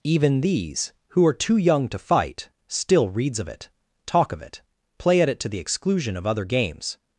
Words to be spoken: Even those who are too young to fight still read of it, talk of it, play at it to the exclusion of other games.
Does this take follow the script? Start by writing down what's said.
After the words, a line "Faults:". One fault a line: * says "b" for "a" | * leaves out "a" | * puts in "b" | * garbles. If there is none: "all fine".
Even these who are too young to fight still reads of it, talk of it, play at it to the exclusion of other games.
Faults:
* says "these" for "those"
* says "reads" for "read"